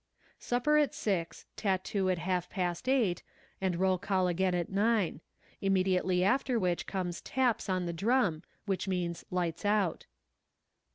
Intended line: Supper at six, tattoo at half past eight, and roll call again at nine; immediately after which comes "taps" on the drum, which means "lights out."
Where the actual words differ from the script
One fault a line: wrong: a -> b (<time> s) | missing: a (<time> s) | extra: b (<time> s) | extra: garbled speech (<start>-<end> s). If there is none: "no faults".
no faults